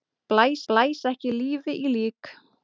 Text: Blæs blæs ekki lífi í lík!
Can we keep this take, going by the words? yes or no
yes